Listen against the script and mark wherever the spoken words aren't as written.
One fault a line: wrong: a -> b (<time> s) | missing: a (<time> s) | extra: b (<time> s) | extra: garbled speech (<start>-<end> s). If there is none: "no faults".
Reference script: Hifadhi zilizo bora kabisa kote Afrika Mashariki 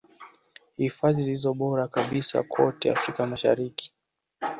no faults